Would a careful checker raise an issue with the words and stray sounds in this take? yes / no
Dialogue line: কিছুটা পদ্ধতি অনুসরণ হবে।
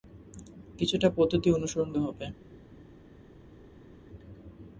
no